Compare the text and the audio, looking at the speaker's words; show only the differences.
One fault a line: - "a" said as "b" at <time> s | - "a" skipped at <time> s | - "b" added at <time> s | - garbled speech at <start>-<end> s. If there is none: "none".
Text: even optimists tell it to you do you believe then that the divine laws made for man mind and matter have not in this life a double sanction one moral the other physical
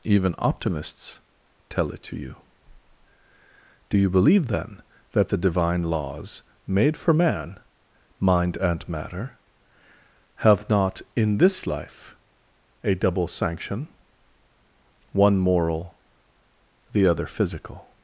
none